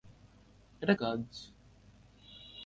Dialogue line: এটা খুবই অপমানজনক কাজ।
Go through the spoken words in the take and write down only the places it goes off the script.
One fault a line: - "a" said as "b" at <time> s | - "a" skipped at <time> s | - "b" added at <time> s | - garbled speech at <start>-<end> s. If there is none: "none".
- "খুবই অপমানজনক" skipped at 0.9 s